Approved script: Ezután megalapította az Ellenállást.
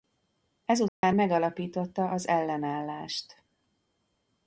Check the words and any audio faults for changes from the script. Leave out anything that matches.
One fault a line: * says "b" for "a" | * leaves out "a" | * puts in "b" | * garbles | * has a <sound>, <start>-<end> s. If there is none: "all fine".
* has a dropout, 0.9-1.0 s